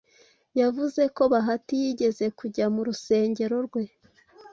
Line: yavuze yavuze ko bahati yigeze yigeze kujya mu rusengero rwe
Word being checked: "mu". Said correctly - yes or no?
yes